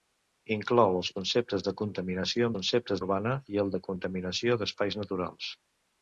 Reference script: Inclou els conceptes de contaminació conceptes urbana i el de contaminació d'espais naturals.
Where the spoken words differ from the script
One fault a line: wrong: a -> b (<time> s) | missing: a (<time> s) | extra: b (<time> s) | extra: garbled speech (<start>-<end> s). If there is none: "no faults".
no faults